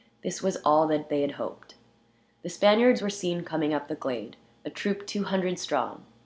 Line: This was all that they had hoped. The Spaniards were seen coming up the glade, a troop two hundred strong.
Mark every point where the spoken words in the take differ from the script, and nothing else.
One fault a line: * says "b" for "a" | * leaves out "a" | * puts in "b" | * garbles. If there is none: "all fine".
all fine